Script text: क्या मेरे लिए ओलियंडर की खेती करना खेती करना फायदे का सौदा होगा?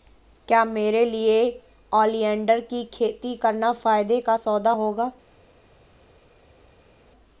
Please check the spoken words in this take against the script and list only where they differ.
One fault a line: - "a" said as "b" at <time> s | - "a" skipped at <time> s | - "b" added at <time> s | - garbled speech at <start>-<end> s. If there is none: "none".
- "खेती करना" skipped at 3.7 s